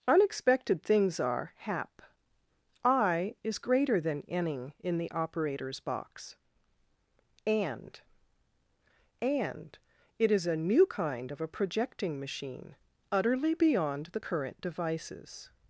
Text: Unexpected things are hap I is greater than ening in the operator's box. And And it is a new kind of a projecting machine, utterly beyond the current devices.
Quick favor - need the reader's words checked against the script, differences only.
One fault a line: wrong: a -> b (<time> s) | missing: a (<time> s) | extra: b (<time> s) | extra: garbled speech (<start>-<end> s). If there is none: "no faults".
no faults